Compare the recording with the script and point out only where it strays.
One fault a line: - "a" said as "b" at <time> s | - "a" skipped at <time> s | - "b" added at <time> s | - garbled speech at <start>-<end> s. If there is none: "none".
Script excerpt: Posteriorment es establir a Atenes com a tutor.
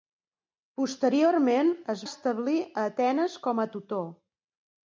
none